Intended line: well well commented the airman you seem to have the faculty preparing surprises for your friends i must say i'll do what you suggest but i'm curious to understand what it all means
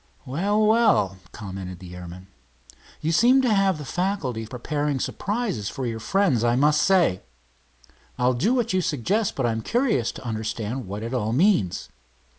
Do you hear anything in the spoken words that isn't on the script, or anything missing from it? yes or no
no